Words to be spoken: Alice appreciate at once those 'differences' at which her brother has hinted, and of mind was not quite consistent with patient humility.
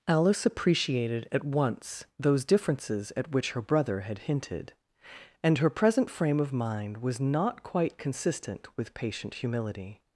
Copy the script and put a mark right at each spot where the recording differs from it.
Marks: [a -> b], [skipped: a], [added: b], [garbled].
Alice [appreciate -> appreciated] at once those 'differences' at which her brother [has -> had] hinted, and [added: her present frame] of mind was not quite consistent with patient humility.